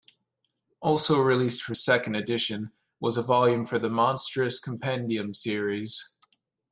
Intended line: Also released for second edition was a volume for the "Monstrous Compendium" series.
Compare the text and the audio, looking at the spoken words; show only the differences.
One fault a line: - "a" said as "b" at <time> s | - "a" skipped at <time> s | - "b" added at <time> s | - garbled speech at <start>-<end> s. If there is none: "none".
none